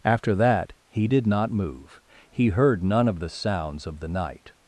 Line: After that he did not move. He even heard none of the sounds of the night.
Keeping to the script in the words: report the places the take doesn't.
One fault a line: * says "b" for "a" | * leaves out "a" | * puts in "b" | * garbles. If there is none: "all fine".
* leaves out "even"